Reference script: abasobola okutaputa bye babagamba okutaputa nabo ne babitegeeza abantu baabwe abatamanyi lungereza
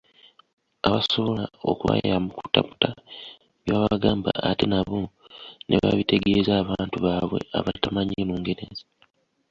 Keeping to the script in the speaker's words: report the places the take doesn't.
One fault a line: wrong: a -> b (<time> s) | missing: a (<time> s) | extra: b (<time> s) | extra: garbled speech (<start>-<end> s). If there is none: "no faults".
extra: okubayamba (1.7 s)
wrong: okutaputa -> ate (4.5 s)